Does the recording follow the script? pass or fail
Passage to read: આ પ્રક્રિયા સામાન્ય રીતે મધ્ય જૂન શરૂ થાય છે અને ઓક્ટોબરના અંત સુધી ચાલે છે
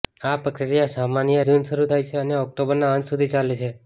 fail